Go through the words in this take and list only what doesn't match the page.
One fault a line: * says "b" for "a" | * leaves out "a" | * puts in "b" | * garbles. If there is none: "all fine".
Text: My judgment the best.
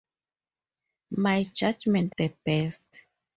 all fine